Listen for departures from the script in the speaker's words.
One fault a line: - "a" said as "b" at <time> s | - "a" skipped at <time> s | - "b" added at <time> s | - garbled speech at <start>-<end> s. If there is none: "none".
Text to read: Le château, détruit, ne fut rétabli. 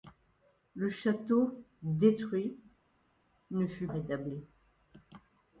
none